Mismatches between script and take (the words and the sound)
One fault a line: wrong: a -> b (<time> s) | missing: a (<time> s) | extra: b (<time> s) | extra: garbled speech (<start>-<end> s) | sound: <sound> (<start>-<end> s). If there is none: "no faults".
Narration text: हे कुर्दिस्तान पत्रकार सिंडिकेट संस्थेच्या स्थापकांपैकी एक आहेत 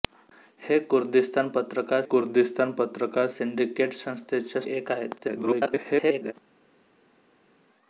extra: कुर्दिस्तान पत्रकार (2.0 s)
missing: स्थापकांपैकी (4.6 s)
extra: garbled speech (5.2-6.3 s)